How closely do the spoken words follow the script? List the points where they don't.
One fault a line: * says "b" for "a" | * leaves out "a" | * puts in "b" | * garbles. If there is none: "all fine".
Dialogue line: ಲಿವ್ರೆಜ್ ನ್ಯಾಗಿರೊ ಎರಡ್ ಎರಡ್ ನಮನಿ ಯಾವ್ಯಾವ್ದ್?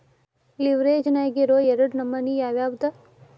* leaves out "ಎರಡ್"